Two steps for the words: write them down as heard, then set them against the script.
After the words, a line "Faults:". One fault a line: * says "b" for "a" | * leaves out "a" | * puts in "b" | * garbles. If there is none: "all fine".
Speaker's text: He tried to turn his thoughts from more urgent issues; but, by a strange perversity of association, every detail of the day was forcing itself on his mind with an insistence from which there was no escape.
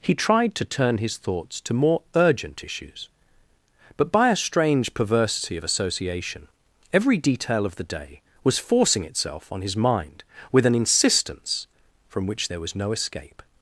He tried to turn his thoughts to more urgent issues; but, by a strange perversity of association, every detail of the day was forcing itself on his mind with an insistence from which there was no escape.
Faults:
* says "to" for "from"